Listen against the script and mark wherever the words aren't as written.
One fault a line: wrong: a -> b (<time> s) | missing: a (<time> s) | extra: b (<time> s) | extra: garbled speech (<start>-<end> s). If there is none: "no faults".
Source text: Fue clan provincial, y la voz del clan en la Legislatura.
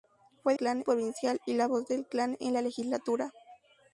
no faults